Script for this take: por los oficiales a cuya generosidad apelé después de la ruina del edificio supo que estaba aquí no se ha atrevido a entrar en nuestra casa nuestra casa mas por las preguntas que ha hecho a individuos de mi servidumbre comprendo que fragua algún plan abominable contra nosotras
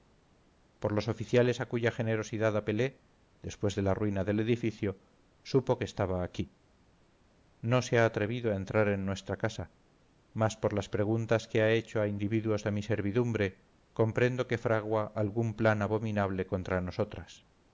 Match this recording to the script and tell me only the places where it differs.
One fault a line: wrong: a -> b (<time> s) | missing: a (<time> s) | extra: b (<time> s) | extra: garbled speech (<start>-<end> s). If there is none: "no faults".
missing: nuestra casa (9.8 s)